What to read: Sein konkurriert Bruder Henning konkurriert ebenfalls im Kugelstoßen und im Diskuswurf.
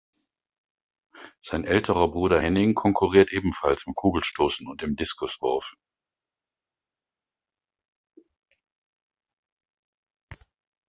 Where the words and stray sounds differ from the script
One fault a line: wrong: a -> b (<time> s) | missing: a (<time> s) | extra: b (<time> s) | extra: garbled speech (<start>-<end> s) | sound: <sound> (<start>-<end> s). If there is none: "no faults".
wrong: konkurriert -> älterer (1.6 s)